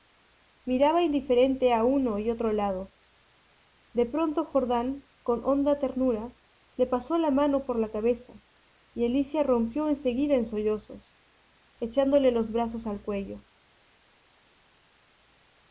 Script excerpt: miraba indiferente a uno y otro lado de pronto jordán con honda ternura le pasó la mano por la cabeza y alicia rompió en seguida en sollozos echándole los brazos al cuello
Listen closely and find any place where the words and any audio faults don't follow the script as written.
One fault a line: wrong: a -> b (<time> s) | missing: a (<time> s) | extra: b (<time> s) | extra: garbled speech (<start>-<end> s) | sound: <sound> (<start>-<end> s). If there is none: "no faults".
no faults